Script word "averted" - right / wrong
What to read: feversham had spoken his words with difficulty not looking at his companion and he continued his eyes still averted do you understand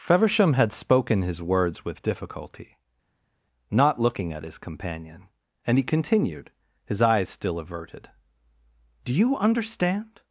right